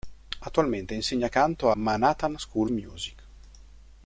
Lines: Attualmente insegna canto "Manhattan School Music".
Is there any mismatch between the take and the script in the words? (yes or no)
no